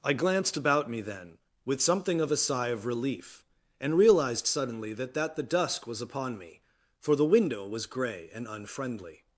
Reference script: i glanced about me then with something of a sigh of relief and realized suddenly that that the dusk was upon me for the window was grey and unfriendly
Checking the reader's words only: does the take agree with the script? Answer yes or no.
yes